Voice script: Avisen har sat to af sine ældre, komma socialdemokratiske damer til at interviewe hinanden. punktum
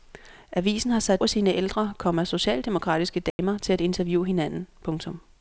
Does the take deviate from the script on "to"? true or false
true